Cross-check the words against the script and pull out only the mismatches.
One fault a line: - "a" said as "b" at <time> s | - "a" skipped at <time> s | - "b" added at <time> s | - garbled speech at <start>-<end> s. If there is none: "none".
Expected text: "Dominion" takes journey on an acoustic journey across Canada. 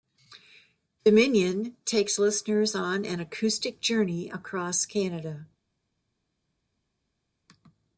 - "journey" said as "listeners" at 2.2 s